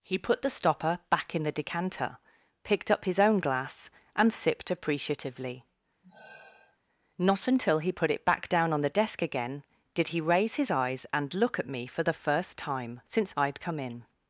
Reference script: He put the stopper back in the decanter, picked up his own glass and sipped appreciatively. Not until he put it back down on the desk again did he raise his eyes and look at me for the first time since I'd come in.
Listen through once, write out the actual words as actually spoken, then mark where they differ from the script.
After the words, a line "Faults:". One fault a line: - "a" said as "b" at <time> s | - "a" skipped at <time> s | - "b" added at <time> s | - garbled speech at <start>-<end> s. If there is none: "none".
He put the stopper back in the decanter, picked up his own glass and sipped appreciatively. Not until he put it back down on the desk again did he raise his eyes and look at me for the first time since I'd come in.
Faults:
none